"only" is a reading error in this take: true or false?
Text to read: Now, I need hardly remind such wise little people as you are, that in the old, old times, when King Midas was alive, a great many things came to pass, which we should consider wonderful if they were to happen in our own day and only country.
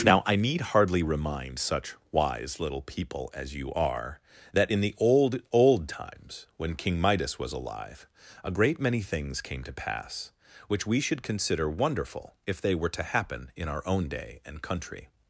true